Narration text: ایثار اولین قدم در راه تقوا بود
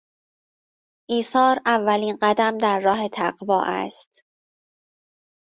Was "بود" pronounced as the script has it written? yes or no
no